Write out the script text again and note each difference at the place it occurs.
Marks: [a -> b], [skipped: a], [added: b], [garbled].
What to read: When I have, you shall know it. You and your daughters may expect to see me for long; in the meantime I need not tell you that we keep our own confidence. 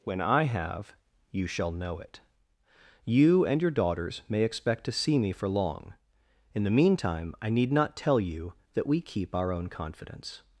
When I have, you shall know it. You and your daughters may expect to see me for long; in the meantime I need not tell you that we keep our own confidence.